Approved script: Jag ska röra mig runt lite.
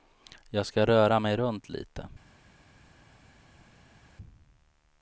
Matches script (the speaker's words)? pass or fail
pass